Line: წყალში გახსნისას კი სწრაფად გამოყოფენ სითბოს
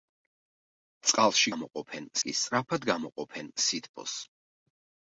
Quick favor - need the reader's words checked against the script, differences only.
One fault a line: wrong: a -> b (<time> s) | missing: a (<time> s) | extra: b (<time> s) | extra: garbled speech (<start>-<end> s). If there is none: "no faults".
wrong: გახსნისას -> გამოყოფენ (1.5 s)